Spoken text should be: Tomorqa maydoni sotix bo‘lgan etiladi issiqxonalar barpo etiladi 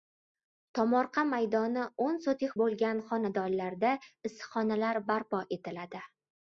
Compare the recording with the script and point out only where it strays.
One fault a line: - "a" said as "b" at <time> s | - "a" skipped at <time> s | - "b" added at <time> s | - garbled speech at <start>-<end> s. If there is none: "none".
- "o‘n" added at 2.0 s
- "etiladi" said as "xonadonlarda" at 3.1 s